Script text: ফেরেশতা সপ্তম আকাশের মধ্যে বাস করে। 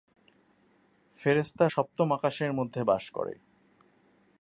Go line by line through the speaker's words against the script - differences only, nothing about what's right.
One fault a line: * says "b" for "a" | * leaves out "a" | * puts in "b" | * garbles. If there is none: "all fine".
all fine